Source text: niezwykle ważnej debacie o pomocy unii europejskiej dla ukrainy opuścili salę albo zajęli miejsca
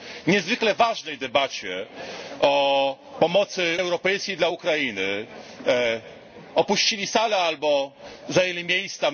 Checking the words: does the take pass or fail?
fail